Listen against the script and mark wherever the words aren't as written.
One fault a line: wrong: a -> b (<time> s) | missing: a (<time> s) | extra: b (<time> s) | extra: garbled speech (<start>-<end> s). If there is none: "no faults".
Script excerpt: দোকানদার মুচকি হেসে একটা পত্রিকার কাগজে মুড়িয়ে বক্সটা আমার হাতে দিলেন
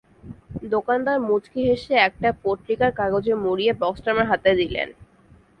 no faults